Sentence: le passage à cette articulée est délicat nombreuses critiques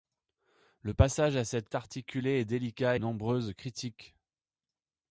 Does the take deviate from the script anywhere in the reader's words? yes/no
no